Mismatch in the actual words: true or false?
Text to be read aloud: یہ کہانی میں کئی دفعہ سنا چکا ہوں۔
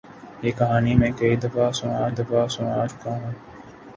true